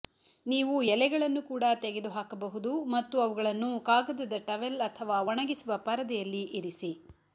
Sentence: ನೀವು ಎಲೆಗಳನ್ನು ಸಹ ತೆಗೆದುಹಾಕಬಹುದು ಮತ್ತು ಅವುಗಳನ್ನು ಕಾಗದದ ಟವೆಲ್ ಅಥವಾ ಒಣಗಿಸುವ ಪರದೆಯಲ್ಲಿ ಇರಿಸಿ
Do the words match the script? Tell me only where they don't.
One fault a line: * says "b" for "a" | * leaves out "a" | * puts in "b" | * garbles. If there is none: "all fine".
* says "ಕೂಡ" for "ಸಹ"